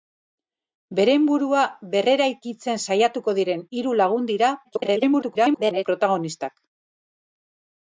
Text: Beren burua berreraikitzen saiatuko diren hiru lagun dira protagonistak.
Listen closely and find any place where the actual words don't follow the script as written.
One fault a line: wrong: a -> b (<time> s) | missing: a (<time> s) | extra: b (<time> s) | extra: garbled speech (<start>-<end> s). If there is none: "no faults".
extra: garbled speech (4.6-5.9 s)